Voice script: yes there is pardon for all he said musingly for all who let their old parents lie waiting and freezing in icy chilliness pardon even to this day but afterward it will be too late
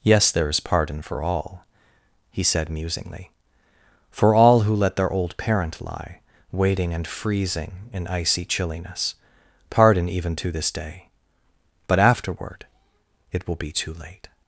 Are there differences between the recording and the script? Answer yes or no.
yes